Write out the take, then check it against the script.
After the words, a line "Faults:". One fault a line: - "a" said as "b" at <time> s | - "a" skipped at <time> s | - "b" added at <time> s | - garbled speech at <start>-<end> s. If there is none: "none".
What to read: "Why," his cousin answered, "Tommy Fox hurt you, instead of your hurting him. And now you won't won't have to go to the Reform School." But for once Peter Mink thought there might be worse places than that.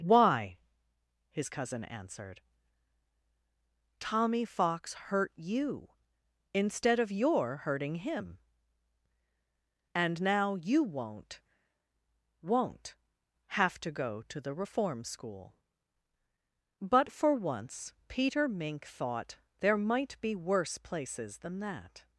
"Why," his cousin answered, "Tommy Fox hurt you, instead of your hurting him. And now you won't won't have to go to the Reform School." But for once Peter Mink thought there might be worse places than that.
Faults:
none